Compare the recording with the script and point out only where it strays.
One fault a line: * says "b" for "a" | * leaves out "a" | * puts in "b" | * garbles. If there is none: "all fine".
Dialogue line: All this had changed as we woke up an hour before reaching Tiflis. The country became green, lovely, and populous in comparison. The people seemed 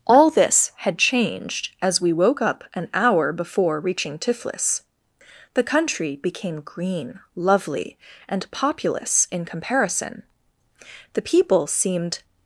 all fine